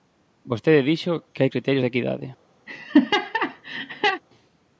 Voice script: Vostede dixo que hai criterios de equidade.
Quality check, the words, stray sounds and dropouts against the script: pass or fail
fail